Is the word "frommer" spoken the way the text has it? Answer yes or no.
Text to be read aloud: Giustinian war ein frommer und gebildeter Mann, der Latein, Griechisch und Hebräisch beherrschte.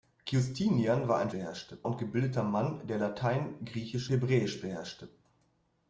no